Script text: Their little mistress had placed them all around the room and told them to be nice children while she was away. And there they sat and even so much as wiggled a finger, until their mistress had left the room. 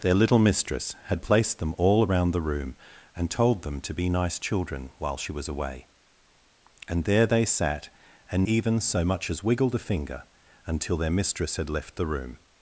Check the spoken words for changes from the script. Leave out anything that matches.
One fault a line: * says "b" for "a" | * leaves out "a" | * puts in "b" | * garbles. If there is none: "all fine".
all fine